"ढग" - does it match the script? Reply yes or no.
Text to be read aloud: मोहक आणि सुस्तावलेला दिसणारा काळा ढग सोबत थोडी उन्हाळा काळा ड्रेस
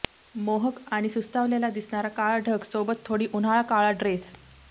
yes